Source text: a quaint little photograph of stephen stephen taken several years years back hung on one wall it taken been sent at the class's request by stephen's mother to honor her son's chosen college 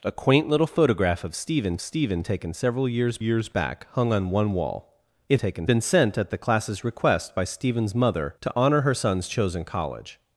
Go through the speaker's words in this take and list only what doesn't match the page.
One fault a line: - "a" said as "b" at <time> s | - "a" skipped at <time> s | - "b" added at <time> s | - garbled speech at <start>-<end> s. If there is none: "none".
none